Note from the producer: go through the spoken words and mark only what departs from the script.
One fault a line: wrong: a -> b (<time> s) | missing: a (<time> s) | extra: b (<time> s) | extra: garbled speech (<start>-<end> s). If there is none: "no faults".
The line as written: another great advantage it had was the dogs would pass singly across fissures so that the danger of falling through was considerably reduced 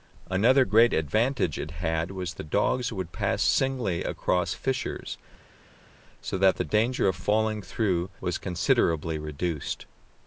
no faults